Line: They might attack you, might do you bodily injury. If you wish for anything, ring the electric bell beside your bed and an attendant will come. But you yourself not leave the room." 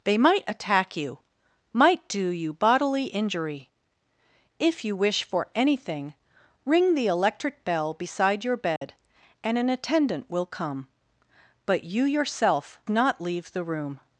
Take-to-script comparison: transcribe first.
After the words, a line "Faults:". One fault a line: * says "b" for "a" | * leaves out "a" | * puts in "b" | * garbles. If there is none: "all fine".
They might attack you, might do you bodily injury. If you wish for anything, ring the electric bell beside your bed and an attendant will come. But you yourself not leave the room."
Faults:
all fine